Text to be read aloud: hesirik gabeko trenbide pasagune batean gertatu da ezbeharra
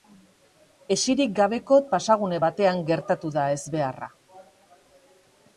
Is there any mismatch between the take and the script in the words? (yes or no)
yes